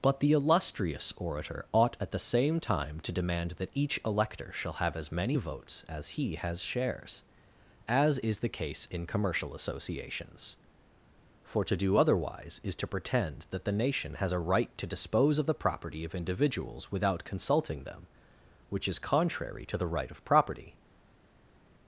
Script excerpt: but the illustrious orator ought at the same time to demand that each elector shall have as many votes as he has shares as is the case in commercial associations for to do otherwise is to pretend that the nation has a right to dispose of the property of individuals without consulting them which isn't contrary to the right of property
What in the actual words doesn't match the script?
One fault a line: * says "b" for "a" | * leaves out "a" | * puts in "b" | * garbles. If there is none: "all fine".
* says "is" for "isn't"